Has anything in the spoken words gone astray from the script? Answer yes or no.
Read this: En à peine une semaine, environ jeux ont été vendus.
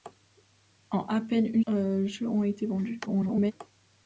yes